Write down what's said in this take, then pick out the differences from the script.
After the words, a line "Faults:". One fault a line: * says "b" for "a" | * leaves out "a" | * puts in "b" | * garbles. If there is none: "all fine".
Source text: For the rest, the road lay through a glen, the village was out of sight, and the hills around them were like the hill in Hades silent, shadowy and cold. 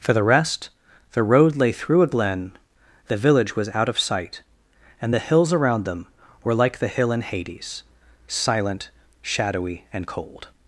For the rest, the road lay through a glen, the village was out of sight, and the hills around them were like the hill in Hades silent, shadowy and cold.
Faults:
all fine